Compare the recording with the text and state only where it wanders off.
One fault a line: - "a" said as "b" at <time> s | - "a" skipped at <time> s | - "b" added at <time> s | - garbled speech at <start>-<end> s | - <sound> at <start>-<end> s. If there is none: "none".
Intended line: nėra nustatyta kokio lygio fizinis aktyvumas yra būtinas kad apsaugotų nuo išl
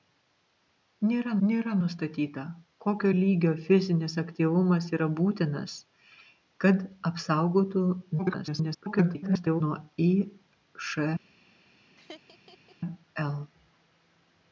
- "nėra" added at 1.5 s
- garbled speech at 8.2-9.6 s
- laugh at 12.0-12.8 s